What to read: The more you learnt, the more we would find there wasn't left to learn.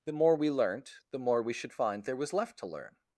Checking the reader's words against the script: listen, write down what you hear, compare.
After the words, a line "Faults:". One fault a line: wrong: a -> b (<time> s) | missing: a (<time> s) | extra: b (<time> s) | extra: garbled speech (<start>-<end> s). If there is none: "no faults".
The more we learnt, the more we should find there was left to learn.
Faults:
wrong: you -> we (0.3 s)
wrong: would -> should (1.5 s)
wrong: wasn't -> was (2.1 s)